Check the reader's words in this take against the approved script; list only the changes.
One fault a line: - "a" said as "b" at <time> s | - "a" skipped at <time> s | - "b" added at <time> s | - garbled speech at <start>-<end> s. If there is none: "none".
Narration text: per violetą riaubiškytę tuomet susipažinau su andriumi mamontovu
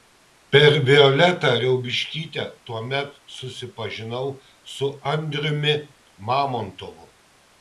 none